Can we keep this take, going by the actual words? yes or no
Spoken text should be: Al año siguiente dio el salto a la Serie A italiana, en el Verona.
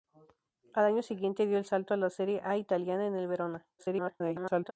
no